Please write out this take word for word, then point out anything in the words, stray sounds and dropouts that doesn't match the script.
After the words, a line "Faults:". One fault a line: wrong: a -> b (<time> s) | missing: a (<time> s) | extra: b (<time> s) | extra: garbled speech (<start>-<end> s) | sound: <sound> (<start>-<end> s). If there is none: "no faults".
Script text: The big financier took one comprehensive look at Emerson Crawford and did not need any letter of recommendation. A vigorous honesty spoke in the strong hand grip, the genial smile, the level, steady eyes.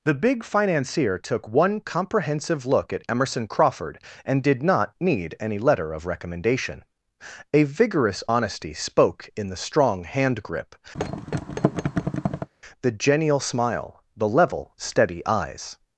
The big financier took one comprehensive look at Emerson Crawford and did not need any letter of recommendation. A vigorous honesty spoke in the strong hand grip, the genial smile, the level, steady eyes.
Faults:
sound: thud (10.9-12.5 s)